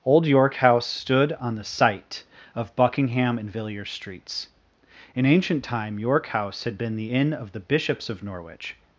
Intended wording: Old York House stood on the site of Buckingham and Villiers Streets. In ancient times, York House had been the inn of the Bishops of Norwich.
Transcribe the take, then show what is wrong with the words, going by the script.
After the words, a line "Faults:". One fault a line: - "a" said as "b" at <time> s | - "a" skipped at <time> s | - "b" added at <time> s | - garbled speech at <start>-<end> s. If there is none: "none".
Old York House stood on the site of Buckingham and Villiers Streets. In ancient time, York House had been the inn of the Bishops of Norwich.
Faults:
- "times" said as "time" at 5.6 s